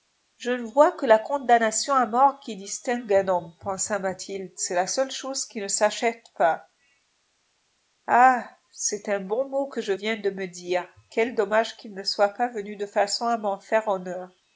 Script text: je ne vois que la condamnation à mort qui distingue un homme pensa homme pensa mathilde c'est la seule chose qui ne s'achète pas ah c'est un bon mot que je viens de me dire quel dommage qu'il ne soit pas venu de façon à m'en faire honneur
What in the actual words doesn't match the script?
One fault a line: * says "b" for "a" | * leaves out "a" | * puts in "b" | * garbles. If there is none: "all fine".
* leaves out "homme pensa"